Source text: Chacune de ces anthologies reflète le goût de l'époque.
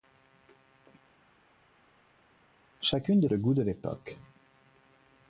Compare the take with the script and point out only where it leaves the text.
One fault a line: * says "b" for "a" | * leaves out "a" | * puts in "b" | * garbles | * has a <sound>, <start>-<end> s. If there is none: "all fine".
* leaves out "ces anthologies reflète"